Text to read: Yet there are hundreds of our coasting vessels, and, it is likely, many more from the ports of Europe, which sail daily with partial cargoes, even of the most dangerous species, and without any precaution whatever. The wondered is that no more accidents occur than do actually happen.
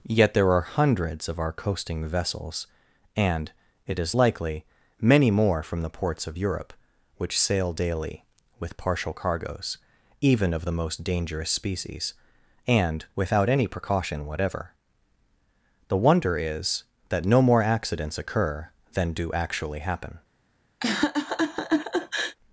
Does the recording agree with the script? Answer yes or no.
no